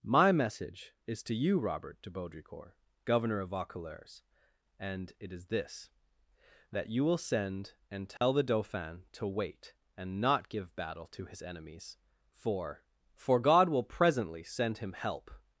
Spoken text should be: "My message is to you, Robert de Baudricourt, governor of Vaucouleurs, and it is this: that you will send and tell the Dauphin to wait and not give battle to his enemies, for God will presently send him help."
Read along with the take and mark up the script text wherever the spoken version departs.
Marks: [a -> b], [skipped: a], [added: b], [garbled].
"My message is to you, Robert de Baudricourt, governor of Vaucouleurs, and it is this: that you will send and tell the Dauphin to wait and not give battle to his enemies, for [added: for] God will presently send him help."